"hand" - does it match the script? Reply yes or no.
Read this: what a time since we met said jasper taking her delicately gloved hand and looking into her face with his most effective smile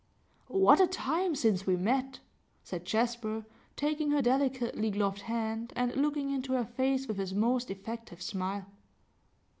yes